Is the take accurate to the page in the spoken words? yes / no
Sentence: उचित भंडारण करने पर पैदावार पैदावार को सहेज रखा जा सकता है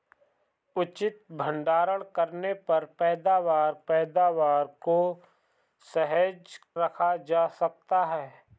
yes